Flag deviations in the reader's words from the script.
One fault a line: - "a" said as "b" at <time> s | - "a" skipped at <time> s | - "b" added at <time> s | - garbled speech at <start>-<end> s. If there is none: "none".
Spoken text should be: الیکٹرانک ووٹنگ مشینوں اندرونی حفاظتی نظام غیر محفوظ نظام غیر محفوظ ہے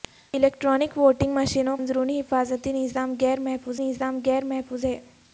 none